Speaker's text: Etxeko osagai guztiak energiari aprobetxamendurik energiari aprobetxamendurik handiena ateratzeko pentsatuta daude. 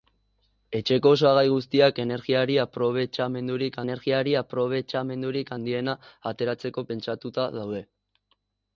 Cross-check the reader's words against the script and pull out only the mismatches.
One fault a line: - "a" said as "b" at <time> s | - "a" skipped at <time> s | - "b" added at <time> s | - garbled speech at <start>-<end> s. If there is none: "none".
none